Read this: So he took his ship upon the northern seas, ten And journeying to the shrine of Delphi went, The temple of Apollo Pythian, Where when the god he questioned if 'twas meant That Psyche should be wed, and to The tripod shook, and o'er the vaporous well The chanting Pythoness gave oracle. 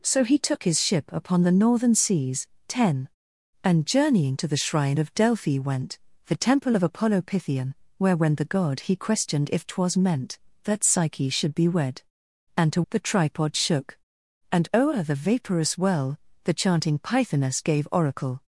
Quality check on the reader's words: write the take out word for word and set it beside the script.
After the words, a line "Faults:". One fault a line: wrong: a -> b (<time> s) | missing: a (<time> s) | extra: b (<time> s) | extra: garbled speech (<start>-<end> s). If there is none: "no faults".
So he took his ship upon the northern seas, ten And journeying to the shrine of Delphi went, The temple of Apollo Pythian, Where when the god he questioned if 'twas meant That Psyche should be wed, and to The tripod shook, and o'er the vaporous well The chanting Pythoness gave oracle.
Faults:
no faults